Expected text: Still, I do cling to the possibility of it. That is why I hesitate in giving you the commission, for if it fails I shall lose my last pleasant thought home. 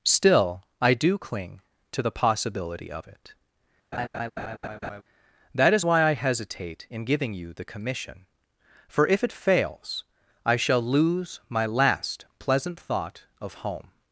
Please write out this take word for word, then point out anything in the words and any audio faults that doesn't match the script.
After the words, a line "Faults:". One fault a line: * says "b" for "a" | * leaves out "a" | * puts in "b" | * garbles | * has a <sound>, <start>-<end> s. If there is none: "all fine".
Still, I do cling to the possibility of it. That is why I hesitate in giving you the commission, for if it fails I shall lose my last pleasant thought of home.
Faults:
* has a laugh, 3.9-5.0 s
* puts in "of"